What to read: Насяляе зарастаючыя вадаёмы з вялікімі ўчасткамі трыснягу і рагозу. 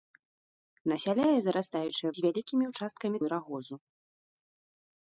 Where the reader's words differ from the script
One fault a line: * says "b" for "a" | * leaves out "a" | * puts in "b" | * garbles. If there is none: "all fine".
* leaves out "вадаёмы"
* leaves out "трыснягу"